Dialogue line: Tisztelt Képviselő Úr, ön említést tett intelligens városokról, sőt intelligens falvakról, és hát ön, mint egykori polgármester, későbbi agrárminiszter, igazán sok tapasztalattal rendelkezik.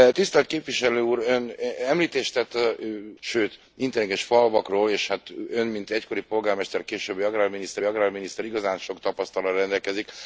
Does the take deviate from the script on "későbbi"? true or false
false